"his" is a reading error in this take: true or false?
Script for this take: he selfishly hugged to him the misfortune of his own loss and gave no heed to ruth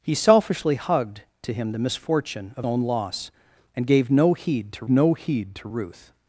true